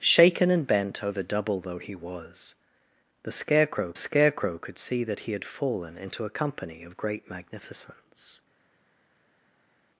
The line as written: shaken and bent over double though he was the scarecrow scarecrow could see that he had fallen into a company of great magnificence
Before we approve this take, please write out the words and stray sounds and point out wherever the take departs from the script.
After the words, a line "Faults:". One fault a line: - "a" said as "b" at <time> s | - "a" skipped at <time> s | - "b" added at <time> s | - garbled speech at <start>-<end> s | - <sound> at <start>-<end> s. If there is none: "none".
shaken and bent over double though he was the scarecrow scarecrow could see that he had fallen into a company of great magnificence
Faults:
none